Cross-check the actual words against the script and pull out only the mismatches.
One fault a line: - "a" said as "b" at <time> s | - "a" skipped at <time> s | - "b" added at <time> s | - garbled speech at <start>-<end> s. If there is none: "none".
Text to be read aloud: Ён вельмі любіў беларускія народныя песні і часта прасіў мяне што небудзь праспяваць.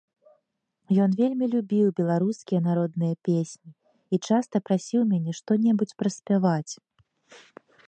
none